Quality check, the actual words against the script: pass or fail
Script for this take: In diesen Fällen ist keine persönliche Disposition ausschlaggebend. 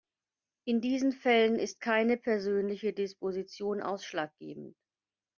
pass